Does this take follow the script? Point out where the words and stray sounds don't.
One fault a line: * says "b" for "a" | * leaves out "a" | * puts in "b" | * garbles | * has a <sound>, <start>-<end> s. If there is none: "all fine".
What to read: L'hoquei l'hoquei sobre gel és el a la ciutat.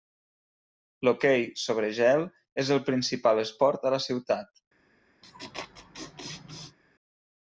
* leaves out "l'hoquei"
* puts in "principal esport"
* has a laugh, 5.2-6.8 s